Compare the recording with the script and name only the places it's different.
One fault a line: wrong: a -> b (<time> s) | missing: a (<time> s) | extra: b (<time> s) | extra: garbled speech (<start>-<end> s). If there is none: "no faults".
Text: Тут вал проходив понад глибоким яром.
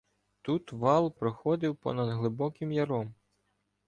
no faults